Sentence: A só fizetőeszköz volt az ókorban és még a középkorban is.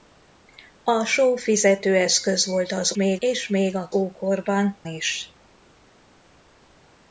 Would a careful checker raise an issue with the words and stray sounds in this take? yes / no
yes